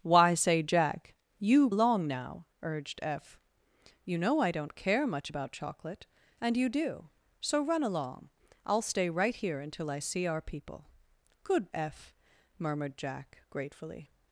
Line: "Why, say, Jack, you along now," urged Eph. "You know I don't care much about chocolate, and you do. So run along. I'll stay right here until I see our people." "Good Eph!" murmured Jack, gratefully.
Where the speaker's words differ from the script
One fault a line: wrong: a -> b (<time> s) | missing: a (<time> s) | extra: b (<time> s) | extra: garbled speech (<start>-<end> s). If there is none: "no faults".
no faults